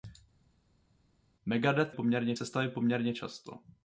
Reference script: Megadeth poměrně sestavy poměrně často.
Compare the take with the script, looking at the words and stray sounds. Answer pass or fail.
pass